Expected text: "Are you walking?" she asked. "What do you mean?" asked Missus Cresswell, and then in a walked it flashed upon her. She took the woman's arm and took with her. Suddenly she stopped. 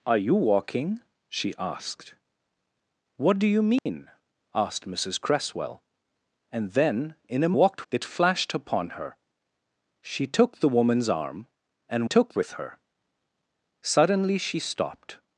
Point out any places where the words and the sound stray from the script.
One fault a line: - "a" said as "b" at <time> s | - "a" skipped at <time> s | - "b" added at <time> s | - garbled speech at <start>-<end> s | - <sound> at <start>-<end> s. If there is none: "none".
- dropout at 3.8-3.9 s